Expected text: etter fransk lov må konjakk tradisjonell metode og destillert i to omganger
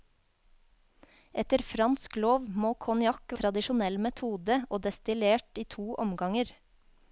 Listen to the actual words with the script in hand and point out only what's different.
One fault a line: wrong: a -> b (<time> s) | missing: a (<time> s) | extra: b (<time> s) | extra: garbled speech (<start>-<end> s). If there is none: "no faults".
no faults